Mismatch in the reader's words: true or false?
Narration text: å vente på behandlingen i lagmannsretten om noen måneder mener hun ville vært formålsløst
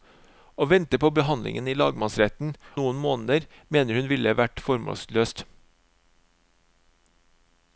true